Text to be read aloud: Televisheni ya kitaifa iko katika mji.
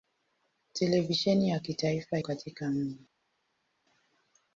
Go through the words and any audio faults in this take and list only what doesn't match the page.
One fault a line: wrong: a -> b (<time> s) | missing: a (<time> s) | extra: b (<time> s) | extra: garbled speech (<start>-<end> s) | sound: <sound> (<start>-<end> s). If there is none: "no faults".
missing: iko (2.2 s)